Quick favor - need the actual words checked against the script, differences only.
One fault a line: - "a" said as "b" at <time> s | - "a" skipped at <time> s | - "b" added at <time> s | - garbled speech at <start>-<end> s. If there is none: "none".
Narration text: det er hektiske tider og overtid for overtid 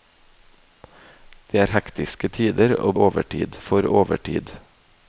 none